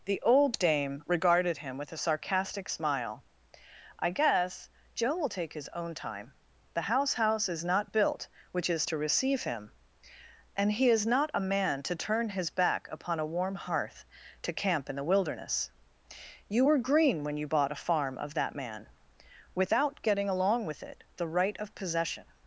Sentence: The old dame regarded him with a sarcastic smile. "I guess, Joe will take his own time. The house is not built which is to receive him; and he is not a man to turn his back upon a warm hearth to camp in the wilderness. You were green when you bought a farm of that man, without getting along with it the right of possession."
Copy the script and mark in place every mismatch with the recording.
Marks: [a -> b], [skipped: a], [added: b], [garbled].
The old dame regarded him with a sarcastic smile. "I guess, Joe will take his own time. The house [added: house] is not built which is to receive him; and he is not a man to turn his back upon a warm hearth to camp in the wilderness. You were green when you bought a farm of that man, without getting along with it the right of possession."